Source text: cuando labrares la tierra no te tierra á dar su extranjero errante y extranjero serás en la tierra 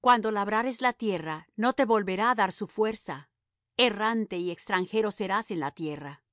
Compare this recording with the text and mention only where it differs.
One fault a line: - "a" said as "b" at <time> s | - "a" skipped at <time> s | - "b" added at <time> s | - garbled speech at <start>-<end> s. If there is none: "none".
- "tierra" said as "volverá" at 1.9 s
- "extranjero" said as "fuerza" at 2.6 s